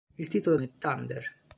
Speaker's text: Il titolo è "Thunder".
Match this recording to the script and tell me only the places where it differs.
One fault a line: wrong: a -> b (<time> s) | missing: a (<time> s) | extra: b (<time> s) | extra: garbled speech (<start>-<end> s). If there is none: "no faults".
no faults